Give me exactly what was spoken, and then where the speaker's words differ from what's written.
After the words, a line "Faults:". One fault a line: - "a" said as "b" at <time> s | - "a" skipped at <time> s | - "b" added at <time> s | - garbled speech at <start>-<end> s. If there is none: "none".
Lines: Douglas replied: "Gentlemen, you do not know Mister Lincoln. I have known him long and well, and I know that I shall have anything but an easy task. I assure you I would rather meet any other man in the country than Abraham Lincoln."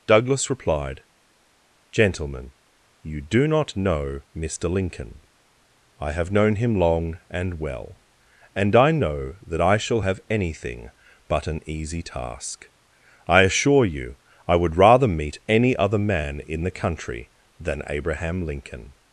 Douglas replied: "Gentlemen, you do not know Mister Lincoln. I have known him long and well, and I know that I shall have anything but an easy task. I assure you I would rather meet any other man in the country than Abraham Lincoln."
Faults:
none